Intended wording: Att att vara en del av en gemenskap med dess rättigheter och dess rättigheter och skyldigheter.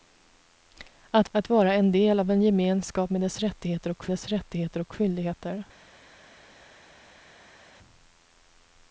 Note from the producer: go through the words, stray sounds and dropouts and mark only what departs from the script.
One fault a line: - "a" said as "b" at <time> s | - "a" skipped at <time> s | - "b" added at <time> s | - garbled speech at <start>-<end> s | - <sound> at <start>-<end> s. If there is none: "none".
none